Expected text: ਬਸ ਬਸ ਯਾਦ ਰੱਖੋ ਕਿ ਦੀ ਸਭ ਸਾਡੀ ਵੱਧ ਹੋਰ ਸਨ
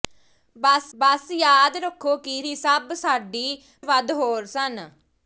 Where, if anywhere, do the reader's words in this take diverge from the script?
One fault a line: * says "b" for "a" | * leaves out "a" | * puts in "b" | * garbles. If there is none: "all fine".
all fine